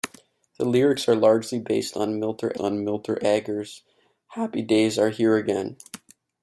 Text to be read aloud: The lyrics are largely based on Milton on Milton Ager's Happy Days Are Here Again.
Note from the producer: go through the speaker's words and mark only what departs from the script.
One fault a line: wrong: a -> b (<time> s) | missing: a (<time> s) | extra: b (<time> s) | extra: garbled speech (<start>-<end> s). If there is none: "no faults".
no faults